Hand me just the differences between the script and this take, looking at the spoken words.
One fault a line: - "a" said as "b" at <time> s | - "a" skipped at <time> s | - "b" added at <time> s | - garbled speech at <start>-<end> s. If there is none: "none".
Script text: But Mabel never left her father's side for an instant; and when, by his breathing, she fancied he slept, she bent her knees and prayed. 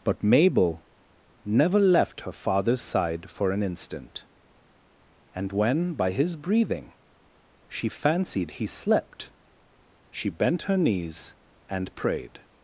none